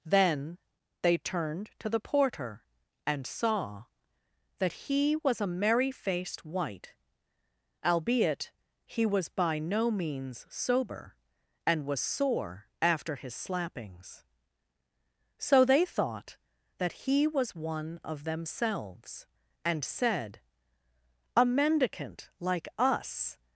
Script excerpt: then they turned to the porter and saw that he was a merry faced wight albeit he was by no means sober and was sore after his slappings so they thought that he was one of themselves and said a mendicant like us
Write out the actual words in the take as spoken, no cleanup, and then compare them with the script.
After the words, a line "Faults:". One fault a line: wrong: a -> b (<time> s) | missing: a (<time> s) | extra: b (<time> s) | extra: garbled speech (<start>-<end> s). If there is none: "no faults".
then they turned to the porter and saw that he was a merry faced wight albeit he was by no means sober and was sore after his slappings so they thought that he was one of themselves and said a mendicant like us
Faults:
no faults